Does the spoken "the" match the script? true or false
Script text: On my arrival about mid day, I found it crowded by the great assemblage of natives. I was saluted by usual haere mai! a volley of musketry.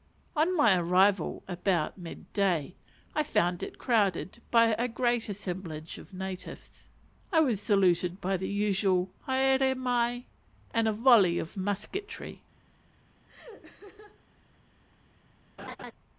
false